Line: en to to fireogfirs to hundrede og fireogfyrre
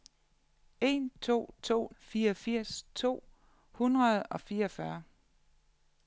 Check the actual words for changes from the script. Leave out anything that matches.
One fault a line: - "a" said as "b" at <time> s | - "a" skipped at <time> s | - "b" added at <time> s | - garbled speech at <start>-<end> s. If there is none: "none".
none